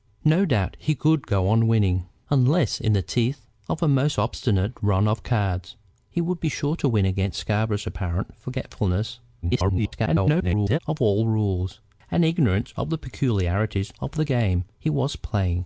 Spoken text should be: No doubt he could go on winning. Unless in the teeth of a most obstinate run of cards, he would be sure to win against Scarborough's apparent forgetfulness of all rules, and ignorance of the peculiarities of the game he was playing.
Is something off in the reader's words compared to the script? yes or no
yes